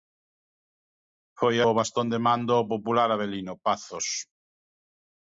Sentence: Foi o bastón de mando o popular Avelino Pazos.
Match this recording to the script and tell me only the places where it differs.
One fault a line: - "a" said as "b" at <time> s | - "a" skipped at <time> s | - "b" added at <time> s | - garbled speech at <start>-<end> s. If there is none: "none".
none